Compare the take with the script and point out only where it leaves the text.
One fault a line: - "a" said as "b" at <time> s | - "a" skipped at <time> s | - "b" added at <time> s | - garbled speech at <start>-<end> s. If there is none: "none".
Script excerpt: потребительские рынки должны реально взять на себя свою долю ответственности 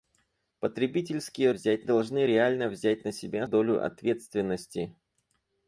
- "рынки" said as "взять" at 1.5 s
- "свою" skipped at 3.5 s